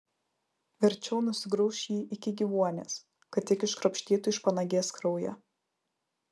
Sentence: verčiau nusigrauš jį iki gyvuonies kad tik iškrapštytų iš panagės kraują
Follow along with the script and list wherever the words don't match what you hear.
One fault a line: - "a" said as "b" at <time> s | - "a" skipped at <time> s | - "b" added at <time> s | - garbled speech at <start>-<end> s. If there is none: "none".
none